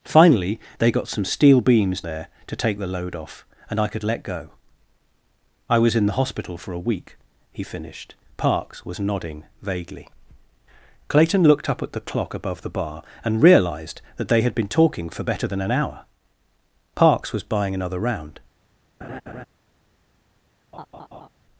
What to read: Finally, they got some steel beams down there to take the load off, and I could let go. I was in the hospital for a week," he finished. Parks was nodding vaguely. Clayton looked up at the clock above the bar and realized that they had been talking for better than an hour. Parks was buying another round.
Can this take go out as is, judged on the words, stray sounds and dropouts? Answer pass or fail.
fail